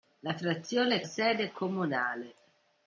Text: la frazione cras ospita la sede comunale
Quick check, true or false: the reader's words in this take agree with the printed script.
false